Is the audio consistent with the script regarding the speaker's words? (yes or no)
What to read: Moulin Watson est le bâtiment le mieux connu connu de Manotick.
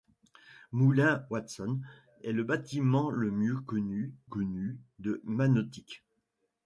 yes